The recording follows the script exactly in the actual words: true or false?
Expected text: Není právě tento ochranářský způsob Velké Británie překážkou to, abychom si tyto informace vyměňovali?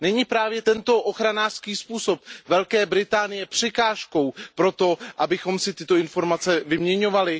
false